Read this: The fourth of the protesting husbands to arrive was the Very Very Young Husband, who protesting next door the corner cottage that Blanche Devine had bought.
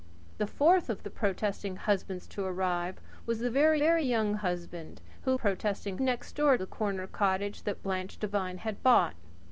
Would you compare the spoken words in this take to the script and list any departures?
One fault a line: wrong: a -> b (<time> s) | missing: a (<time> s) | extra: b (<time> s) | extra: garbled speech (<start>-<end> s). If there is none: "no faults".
no faults